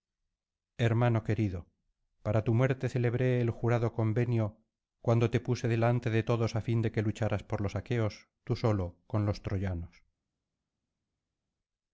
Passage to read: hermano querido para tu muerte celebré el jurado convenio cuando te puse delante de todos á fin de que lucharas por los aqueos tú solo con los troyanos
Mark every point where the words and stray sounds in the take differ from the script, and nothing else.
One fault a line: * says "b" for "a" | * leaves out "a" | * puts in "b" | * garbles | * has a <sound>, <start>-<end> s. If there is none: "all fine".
all fine